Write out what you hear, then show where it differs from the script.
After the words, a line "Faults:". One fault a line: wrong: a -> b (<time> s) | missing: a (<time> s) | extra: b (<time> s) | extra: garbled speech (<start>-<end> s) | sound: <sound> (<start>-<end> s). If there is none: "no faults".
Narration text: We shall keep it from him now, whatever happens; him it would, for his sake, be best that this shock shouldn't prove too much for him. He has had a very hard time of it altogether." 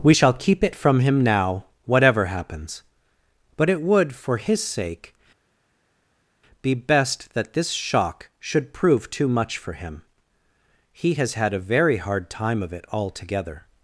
We shall keep it from him now, whatever happens; but it would, for his sake, be best that this shock should prove too much for him. He has had a very hard time of it altogether."
Faults:
wrong: him -> but (3.6 s)
wrong: shouldn't -> should (8.4 s)